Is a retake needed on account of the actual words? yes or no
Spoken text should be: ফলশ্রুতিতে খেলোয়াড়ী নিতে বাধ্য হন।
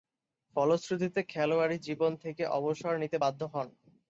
yes